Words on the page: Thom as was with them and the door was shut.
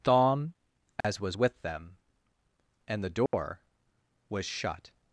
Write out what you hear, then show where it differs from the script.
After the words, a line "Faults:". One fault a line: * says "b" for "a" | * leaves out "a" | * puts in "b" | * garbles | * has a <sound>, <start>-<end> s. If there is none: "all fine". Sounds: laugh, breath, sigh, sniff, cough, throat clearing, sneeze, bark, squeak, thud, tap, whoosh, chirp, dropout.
Thom as was with them and the door was shut.
Faults:
* has a dropout, 1.0-1.0 s
* has a dropout, 3.3-3.3 s